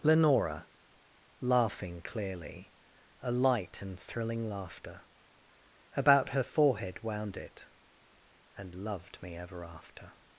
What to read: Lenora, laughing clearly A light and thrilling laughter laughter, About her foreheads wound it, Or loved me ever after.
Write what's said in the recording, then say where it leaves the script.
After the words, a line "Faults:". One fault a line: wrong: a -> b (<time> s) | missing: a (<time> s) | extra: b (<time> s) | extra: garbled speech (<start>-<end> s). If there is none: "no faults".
Lenora, laughing clearly A light and thrilling laughter, About her forehead wound it, And loved me ever after.
Faults:
missing: laughter (5.0 s)
wrong: foreheads -> forehead (6.4 s)
wrong: Or -> And (8.6 s)